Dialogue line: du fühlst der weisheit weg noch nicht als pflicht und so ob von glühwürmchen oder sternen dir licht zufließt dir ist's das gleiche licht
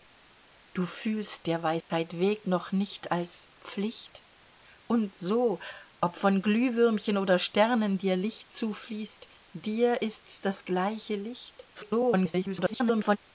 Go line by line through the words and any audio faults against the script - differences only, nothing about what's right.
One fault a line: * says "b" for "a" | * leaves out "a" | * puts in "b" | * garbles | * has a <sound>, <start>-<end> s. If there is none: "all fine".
* has a dropout, 1.8-1.9 s
* garbles